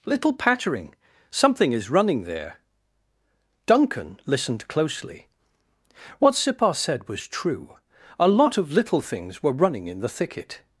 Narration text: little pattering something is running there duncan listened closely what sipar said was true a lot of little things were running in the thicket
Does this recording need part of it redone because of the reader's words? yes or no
no